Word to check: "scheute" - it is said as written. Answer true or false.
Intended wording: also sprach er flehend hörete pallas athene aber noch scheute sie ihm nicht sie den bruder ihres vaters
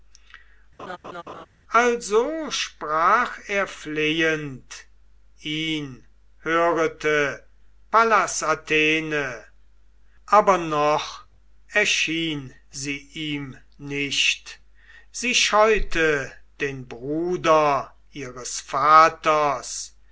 false